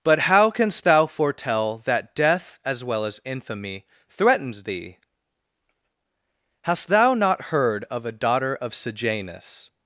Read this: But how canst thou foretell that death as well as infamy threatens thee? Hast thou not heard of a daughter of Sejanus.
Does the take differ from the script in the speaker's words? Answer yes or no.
no